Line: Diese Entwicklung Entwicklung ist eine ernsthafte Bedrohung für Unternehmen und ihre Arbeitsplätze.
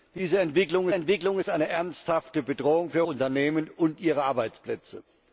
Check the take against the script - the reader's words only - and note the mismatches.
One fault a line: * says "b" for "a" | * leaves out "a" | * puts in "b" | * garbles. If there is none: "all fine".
all fine